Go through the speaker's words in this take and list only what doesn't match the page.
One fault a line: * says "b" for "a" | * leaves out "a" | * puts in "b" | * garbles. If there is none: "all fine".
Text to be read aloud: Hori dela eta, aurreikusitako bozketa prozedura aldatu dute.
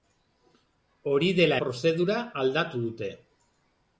* leaves out "eta aurreikusitako bozketa"